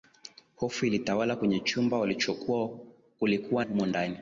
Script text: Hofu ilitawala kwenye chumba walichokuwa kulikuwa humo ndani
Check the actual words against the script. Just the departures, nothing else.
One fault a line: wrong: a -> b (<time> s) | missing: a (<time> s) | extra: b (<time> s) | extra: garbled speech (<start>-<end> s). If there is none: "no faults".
no faults